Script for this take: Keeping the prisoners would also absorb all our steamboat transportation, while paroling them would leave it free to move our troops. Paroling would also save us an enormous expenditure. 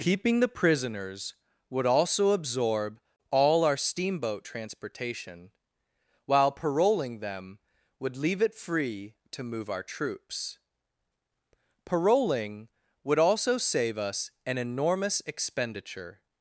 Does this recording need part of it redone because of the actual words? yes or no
no